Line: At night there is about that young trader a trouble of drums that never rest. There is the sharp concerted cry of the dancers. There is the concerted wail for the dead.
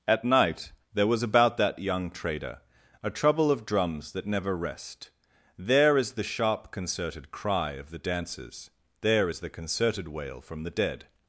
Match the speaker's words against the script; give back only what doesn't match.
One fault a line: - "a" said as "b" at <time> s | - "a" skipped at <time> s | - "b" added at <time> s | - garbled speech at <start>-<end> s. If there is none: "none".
- "is" said as "was" at 1.1 s
- "for" said as "from" at 10.4 s